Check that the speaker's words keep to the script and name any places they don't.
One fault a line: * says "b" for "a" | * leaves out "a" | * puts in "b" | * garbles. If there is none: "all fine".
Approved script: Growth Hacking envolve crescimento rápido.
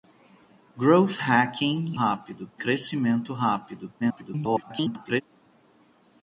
* says "rápido" for "envolve"
* garbles